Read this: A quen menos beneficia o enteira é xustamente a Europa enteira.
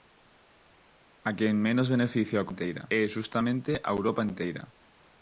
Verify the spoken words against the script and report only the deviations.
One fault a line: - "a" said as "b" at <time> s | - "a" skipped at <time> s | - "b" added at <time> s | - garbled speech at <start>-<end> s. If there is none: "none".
none